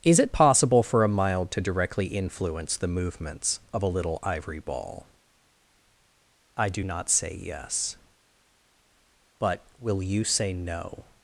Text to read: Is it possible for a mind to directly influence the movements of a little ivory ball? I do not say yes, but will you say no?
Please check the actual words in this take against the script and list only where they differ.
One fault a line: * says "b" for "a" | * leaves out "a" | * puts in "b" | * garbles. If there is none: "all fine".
* says "mild" for "mind"